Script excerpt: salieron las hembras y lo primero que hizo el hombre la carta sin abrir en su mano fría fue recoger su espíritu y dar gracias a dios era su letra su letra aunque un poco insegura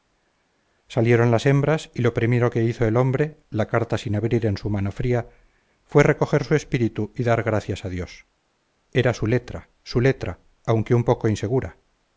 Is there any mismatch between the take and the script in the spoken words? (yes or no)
no